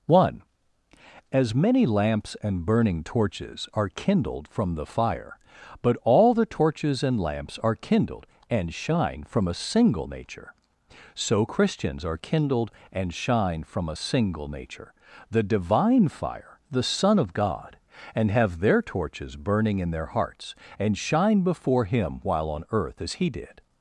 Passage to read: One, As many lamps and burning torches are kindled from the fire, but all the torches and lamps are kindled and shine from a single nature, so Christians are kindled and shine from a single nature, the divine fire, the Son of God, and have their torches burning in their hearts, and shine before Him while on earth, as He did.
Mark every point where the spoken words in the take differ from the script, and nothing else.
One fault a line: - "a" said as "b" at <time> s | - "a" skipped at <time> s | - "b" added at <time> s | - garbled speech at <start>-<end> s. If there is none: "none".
none